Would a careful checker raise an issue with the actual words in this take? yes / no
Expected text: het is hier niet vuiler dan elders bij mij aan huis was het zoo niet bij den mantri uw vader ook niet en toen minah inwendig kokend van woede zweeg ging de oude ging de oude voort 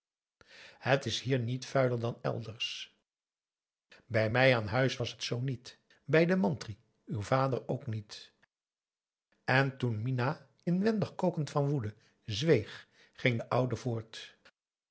yes